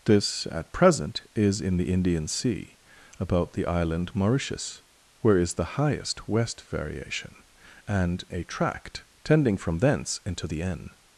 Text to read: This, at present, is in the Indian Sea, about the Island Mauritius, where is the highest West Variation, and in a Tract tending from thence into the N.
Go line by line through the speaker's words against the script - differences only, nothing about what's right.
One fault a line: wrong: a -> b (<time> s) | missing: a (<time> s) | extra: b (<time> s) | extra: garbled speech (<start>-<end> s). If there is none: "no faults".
missing: in (8.2 s)